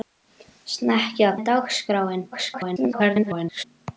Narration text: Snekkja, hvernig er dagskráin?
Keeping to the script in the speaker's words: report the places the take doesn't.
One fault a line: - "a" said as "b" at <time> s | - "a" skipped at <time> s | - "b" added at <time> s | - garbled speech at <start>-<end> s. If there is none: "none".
- "hvernig" skipped at 1.3 s
- garbled speech at 2.3-3.6 s